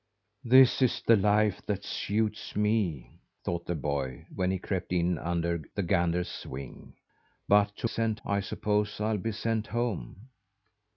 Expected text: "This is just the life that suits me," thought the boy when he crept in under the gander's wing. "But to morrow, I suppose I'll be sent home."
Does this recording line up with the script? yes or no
no